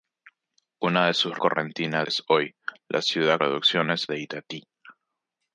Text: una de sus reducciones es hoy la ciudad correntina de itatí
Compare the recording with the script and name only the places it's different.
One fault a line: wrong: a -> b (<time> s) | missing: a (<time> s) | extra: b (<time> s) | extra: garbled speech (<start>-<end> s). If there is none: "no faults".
wrong: reducciones -> correntina (1.4 s)
wrong: correntina -> reducciones (3.4 s)